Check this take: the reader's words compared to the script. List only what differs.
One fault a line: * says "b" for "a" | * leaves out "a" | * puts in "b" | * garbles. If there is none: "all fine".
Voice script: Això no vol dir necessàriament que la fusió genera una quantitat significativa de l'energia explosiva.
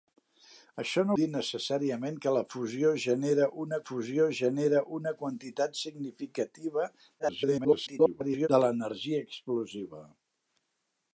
* leaves out "vol"
* puts in "fusió genera una"
* garbles